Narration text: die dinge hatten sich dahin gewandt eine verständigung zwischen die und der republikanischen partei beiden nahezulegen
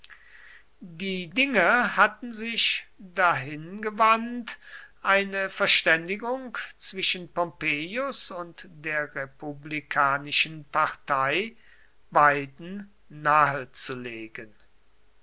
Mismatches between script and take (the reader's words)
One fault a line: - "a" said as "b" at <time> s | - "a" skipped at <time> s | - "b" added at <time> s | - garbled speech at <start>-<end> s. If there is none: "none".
- "die" said as "pompeius" at 7.3 s